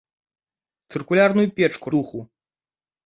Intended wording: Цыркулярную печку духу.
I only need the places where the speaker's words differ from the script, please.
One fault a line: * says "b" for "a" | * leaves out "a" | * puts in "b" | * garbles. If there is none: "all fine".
all fine